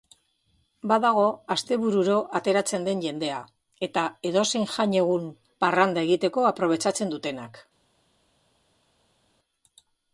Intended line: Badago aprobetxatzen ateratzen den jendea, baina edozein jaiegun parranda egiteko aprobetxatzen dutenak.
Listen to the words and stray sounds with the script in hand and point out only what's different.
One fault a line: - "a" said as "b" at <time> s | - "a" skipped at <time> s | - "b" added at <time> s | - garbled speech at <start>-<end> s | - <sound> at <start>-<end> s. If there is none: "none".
- "aprobetxatzen" said as "astebururo" at 1.6 s
- "baina" said as "eta" at 3.9 s